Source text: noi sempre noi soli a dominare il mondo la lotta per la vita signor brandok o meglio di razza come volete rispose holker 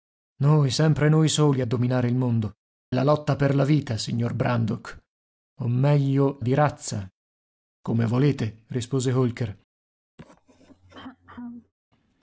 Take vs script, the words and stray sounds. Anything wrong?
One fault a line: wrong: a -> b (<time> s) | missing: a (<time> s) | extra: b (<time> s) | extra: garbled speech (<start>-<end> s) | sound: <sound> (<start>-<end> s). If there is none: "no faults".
sound: throat clearing (10.2-11.7 s)